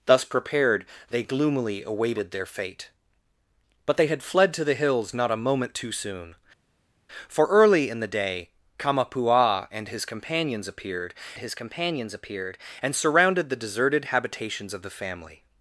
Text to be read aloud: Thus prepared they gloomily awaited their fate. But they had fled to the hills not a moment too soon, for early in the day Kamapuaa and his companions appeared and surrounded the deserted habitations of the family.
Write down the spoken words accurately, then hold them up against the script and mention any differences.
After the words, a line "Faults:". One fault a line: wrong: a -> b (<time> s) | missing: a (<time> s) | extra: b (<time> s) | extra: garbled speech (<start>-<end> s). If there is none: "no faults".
Thus prepared they gloomily awaited their fate. But they had fled to the hills not a moment too soon, for early in the day Kamapuaa and his companions appeared his companions appeared and surrounded the deserted habitations of the family.
Faults:
extra: his companions appeared (11.4 s)